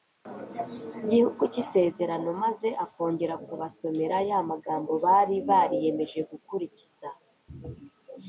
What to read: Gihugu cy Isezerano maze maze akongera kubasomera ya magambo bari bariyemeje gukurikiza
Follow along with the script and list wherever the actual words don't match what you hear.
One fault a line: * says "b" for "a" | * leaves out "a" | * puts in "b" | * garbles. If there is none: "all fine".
* leaves out "maze"